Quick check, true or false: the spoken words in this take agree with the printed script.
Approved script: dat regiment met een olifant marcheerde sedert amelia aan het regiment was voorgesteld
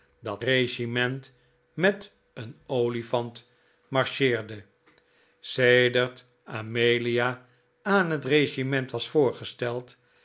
true